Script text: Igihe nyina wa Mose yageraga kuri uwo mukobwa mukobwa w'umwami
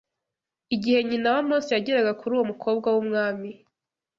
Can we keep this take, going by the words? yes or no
no